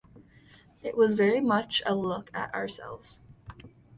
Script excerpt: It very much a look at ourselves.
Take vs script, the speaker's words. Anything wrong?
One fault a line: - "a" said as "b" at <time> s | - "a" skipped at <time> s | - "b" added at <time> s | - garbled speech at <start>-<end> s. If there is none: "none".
- "was" added at 1.0 s